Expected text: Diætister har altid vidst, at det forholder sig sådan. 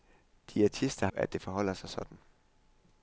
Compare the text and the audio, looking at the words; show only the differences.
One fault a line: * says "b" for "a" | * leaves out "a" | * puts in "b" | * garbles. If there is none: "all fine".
* leaves out "har altid vidst"